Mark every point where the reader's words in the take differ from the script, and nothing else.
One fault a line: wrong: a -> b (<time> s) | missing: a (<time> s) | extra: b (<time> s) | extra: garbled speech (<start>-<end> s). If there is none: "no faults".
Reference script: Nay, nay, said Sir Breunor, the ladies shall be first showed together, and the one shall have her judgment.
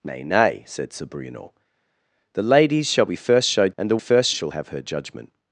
missing: together (3.7 s)
wrong: one -> first (4.0 s)